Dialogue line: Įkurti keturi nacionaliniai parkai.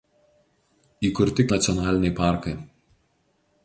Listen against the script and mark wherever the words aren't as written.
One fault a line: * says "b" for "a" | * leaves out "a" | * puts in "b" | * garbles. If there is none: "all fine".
* leaves out "keturi"